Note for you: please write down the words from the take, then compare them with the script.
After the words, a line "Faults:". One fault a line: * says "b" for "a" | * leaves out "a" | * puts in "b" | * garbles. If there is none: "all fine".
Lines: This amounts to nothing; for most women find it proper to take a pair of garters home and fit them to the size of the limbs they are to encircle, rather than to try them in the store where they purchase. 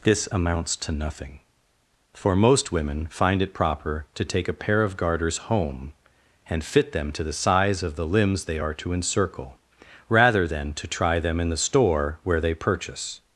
This amounts to nothing; for most women find it proper to take a pair of garters home and fit them to the size of the limbs they are to encircle, rather than to try them in the store where they purchase.
Faults:
all fine